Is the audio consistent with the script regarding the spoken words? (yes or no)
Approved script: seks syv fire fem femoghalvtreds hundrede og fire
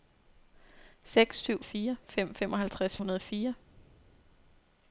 yes